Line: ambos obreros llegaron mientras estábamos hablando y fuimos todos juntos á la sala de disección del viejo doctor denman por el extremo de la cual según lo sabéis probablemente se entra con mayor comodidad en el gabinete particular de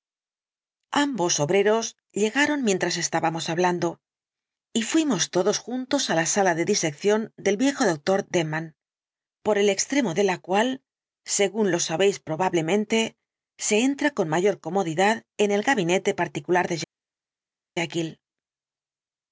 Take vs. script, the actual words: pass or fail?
pass